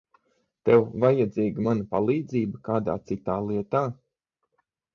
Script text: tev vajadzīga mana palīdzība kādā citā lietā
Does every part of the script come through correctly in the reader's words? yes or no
yes